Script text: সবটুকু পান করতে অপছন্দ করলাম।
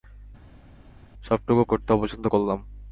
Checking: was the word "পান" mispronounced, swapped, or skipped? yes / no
yes